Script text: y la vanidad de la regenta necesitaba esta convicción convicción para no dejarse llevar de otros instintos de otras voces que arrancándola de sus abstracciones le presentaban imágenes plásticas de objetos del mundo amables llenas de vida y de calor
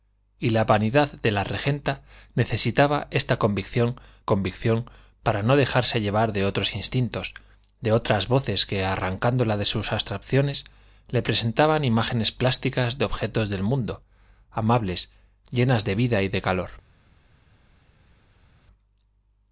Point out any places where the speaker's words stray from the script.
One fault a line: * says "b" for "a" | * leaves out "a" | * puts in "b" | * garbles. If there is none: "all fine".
all fine